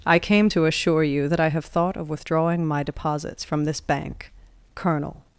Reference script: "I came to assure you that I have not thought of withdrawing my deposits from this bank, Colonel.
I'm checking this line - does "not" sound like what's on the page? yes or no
no